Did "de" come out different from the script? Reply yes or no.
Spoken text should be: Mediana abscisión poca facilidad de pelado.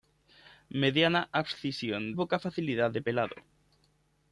no